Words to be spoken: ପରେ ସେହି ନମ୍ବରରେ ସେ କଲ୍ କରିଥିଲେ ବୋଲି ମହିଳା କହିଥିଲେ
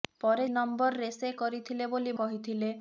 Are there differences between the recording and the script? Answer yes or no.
yes